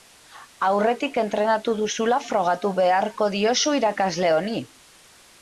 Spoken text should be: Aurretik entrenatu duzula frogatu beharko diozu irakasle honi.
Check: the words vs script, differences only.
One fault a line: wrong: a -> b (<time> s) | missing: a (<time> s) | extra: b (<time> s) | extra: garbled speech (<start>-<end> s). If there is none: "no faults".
no faults